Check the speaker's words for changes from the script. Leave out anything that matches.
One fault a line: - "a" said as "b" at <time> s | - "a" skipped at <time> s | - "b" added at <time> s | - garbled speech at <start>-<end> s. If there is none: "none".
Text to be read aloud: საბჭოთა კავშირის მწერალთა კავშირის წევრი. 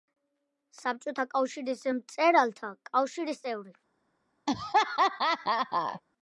none